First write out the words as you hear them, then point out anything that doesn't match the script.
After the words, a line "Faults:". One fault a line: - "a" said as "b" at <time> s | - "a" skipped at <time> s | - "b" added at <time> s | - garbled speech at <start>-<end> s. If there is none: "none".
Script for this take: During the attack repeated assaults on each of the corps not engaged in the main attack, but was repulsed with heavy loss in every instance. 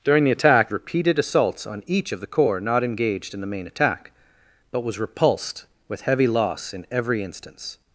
During the attack repeated assaults on each of the corps not engaged in the main attack, but was repulsed with heavy loss in every instance.
Faults:
none